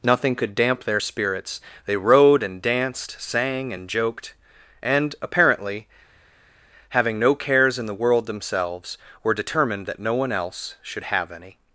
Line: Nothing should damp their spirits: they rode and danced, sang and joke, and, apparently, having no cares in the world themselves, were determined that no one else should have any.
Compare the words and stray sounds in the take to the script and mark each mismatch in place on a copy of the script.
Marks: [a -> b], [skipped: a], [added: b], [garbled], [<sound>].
Nothing [should -> could] damp their spirits: they rode and danced, sang and [joke, -> joked] and, apparently, having no cares in the world themselves, were determined that no one else should have any.